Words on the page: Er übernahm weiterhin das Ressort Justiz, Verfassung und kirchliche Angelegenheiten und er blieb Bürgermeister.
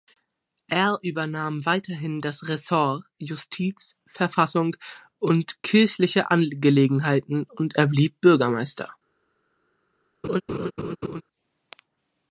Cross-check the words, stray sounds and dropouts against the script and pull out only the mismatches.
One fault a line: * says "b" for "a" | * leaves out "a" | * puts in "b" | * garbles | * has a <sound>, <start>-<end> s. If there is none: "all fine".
* has a laugh, 10.2-11.2 s